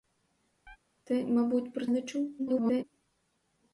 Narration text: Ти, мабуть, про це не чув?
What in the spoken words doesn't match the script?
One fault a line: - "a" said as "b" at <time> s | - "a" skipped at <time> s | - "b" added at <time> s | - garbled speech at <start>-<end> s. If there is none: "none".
- "це" skipped at 1.9 s
- garbled speech at 2.4-2.8 s